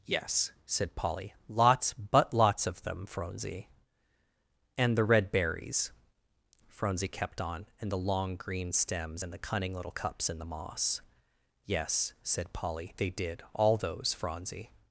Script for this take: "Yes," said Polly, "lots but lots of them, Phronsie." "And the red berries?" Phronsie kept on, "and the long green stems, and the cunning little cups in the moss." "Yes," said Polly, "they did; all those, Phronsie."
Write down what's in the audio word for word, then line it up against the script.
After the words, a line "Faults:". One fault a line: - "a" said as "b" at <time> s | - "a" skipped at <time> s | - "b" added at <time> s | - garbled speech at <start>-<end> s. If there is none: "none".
"Yes," said Polly, "lots but lots of them, Phronsie." "And the red berries?" Phronsie kept on, "and the long green stems, and the cunning little cups in the moss." "Yes," said Polly, "they did; all those, Phronsie."
Faults:
none